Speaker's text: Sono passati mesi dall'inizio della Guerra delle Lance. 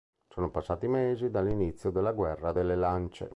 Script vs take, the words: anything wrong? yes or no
no